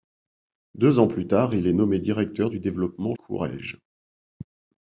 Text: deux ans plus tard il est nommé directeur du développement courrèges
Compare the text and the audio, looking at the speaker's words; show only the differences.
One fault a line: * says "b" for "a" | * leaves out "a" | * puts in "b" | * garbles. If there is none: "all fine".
all fine